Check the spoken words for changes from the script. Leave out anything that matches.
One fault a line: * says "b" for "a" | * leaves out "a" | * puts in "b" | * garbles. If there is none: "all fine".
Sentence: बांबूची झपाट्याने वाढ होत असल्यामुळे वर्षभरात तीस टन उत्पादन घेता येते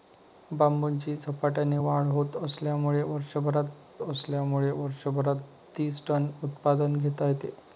* puts in "असल्यामुळे वर्षभरात"